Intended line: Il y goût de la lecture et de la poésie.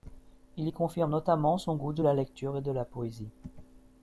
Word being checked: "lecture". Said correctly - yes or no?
yes